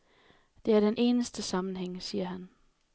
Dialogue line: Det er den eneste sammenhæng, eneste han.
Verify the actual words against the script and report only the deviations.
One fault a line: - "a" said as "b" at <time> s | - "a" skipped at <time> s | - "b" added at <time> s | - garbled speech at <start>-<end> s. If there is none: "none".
- "eneste" said as "siger" at 2.0 s